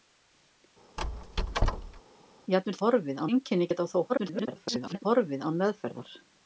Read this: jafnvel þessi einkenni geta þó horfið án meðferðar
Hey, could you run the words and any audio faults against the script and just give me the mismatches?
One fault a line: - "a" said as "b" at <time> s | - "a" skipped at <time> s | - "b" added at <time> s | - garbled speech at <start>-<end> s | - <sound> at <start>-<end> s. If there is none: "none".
- squeak at 1.0-2.0 s
- "þessi" said as "horfið" at 2.8 s
- garbled speech at 4.1-5.0 s